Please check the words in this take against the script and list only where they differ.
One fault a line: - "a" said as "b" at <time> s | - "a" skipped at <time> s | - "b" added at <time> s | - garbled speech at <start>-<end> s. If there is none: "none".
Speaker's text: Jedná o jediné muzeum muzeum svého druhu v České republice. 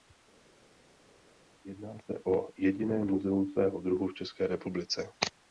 - "se" added at 2.0 s
- "muzeum" skipped at 3.5 s